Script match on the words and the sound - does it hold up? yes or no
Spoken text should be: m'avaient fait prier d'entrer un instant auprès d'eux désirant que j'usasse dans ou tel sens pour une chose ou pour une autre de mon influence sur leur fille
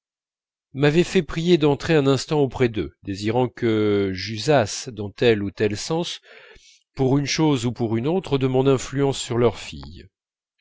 no